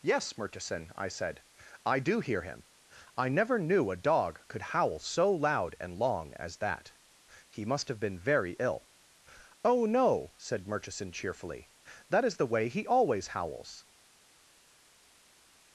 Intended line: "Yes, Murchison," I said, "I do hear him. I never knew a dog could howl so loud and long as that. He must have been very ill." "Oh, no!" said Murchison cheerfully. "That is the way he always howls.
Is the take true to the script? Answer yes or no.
yes